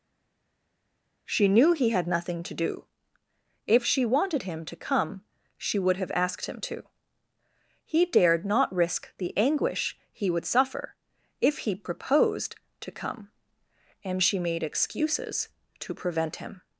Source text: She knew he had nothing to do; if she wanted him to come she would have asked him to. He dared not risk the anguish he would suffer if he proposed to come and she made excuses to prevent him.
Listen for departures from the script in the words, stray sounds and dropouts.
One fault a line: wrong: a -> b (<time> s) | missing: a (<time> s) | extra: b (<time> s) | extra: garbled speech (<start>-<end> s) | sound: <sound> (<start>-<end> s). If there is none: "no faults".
no faults